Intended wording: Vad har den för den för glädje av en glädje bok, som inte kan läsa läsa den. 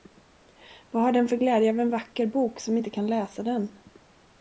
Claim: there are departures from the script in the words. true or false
true